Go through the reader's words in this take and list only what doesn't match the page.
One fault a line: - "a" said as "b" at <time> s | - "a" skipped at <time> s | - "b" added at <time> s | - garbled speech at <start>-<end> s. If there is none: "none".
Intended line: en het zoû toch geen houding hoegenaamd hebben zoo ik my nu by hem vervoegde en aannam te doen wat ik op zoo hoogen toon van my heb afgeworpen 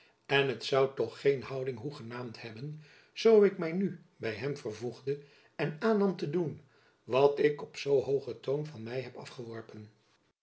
none